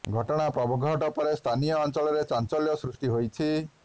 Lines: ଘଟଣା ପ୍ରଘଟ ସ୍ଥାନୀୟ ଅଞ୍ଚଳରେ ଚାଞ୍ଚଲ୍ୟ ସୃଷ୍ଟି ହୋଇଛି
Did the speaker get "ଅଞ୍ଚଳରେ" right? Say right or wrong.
right